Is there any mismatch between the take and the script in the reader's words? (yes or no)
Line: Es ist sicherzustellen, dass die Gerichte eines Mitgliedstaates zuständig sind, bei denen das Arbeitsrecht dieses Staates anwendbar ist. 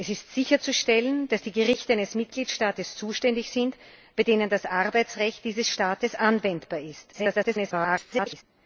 yes